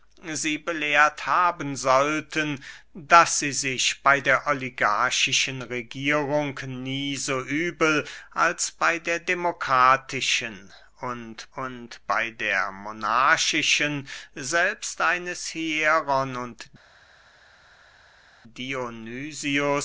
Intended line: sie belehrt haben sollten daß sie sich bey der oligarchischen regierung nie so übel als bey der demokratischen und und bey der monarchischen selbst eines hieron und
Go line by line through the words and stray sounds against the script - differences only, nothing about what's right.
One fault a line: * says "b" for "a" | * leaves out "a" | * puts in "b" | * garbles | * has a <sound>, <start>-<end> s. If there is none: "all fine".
all fine